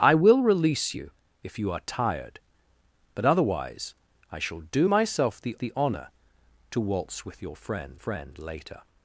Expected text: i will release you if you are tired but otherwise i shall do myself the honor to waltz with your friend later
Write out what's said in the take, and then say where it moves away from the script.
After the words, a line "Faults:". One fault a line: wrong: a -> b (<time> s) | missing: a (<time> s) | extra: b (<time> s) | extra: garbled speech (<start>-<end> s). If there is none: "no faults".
i will release you if you are tired but otherwise i shall do myself the the honor to waltz with your friend friend later
Faults:
extra: the (5.6 s)
extra: friend (7.9 s)